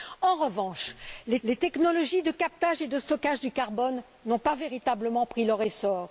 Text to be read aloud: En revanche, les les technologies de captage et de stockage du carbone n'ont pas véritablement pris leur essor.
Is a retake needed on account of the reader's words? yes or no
no